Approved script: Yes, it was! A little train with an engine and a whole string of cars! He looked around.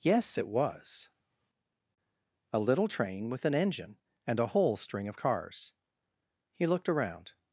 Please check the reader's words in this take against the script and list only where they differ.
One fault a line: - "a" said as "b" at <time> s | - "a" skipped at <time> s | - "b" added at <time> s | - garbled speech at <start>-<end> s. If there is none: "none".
none